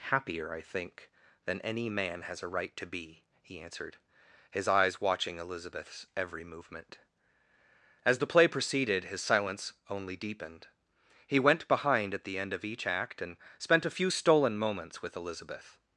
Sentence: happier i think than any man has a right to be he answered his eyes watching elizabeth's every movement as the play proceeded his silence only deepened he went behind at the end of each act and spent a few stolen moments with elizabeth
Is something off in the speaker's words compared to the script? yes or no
no